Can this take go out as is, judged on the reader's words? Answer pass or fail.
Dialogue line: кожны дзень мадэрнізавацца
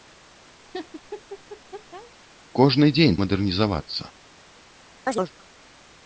pass